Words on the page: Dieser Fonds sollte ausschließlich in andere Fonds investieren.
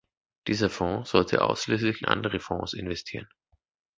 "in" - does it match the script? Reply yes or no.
no